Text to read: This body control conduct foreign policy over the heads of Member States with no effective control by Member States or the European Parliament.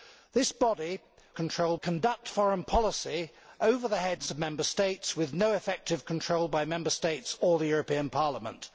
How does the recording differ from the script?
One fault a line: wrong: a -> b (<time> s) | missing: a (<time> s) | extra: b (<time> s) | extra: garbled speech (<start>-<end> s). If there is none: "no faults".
no faults